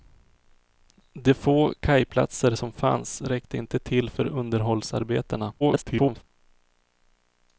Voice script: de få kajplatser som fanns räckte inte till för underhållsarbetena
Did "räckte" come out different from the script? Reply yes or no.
no